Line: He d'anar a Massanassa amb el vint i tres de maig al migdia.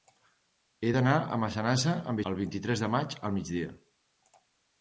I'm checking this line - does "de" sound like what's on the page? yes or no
yes